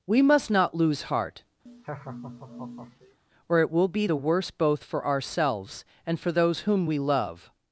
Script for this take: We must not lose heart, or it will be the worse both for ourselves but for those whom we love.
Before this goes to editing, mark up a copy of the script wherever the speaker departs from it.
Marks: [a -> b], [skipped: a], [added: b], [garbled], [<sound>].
We must not lose heart, [laugh] or it will be the worse both for ourselves [but -> and] for those whom we love.